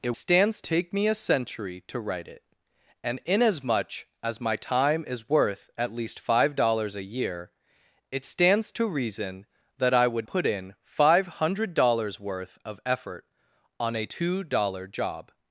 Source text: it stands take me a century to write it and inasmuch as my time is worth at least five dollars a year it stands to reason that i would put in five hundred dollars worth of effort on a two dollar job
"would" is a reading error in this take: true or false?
false